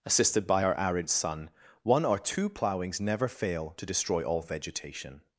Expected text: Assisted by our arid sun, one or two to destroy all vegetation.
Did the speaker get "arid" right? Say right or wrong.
right